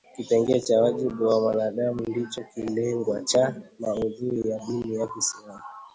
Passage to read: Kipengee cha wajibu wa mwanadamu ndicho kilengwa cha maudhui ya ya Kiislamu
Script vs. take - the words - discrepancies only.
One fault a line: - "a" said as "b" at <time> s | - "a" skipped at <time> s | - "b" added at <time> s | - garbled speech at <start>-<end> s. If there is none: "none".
- "dini" added at 4.6 s